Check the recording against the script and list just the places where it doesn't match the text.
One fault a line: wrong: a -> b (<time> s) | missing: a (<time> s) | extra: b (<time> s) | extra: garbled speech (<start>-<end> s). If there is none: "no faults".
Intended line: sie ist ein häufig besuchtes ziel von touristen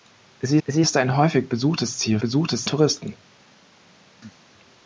extra: sie (0.7 s)
wrong: von -> besuchtes (2.2 s)